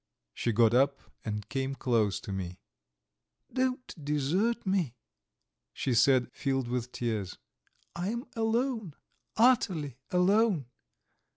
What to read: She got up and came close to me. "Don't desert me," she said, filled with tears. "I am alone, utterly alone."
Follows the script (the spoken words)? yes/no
yes